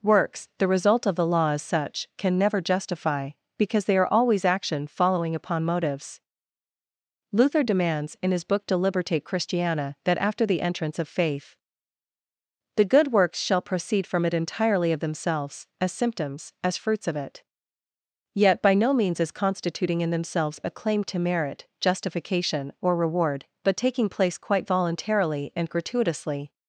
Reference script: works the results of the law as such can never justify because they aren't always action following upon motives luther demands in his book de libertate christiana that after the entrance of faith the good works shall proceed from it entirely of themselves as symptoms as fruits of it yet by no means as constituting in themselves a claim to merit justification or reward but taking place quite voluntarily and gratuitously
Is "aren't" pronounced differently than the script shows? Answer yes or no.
yes